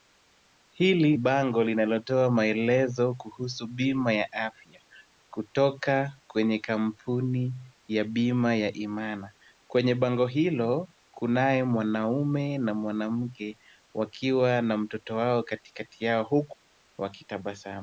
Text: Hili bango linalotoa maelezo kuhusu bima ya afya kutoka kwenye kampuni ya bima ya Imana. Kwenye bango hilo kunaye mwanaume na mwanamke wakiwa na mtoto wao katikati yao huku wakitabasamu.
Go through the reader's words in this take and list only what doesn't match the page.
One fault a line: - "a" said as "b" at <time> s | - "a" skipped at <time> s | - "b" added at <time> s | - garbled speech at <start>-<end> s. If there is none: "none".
none